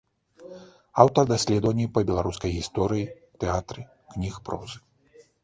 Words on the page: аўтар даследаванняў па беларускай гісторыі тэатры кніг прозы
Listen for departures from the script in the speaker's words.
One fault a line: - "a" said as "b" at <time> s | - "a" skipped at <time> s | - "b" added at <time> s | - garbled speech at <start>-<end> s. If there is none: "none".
none